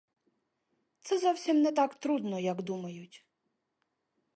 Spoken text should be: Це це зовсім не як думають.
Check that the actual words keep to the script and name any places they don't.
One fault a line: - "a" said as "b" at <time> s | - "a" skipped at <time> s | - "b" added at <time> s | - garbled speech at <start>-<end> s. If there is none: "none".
- "це" skipped at 1.2 s
- "так трудно" added at 1.7 s